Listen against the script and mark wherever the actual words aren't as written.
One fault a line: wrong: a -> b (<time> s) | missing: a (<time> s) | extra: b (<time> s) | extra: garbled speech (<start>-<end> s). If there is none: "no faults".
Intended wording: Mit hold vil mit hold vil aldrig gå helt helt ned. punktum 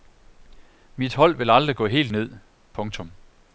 missing: mit hold vil (1.5 s)
missing: helt (2.1 s)